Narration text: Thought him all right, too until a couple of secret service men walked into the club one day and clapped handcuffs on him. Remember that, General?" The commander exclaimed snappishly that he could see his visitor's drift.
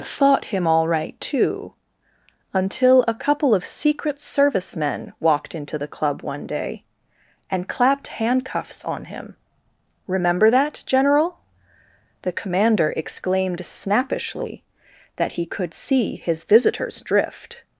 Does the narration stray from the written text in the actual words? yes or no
no